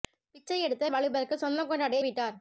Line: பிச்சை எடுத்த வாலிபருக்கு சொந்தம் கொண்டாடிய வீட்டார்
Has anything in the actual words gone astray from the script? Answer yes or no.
no